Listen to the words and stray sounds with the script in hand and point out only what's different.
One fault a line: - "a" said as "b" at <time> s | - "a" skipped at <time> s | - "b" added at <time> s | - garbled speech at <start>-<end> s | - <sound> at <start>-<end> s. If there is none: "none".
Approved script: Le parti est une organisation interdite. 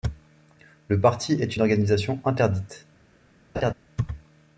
- laugh at 3.5-3.7 s